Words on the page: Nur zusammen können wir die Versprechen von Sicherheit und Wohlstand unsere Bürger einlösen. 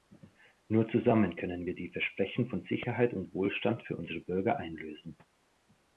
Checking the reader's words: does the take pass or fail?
fail